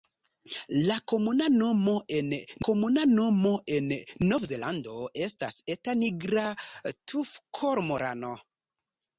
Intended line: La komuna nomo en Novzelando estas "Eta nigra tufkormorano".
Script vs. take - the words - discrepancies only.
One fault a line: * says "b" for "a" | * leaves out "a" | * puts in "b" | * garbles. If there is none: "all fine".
* puts in "komuna nomo en"